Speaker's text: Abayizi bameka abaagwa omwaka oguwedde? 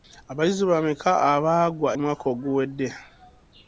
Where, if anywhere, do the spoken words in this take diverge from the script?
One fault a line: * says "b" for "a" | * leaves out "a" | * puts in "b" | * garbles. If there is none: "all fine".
all fine